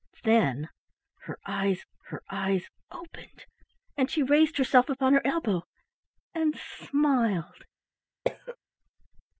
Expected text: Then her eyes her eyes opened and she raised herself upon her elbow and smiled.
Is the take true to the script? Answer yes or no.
yes